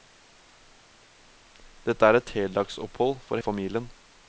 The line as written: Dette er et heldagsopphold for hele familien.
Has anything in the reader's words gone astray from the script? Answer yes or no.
yes